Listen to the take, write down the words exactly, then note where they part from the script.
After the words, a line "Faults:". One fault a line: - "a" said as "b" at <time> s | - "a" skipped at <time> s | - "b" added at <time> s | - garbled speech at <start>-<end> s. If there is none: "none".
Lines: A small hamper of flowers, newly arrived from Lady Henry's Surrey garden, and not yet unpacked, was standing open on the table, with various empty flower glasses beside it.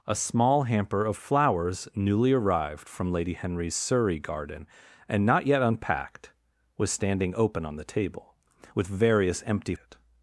A small hamper of flowers, newly arrived from Lady Henry's Surrey garden, and not yet unpacked, was standing open on the table, with various empty it.
Faults:
- "flower glasses beside" skipped at 9.7 s